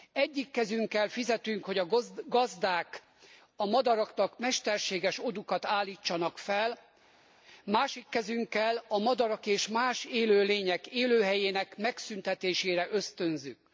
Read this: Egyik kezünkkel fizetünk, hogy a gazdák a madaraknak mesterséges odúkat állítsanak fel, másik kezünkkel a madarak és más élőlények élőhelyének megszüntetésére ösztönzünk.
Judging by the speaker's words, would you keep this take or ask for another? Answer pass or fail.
pass